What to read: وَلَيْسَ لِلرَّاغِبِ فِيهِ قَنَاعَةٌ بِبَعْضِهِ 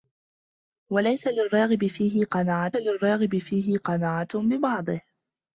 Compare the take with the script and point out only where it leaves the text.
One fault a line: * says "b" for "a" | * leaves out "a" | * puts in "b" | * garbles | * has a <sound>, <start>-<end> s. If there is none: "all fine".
* puts in "لِلرَّاغِبِ فِيهِ قَنَاعَةٌ"